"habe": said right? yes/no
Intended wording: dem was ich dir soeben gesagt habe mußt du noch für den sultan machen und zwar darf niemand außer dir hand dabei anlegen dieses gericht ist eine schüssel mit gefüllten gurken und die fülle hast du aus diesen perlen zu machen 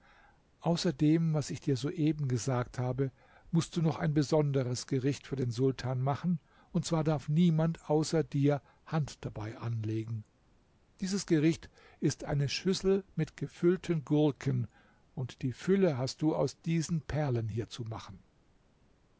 yes